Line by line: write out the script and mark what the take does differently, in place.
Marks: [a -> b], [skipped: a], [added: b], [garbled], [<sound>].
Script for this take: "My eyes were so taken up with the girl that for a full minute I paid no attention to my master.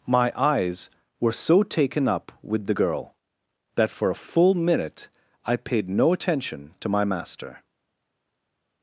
"My eyes were so taken up with the girl that for a full minute I paid no attention to my master.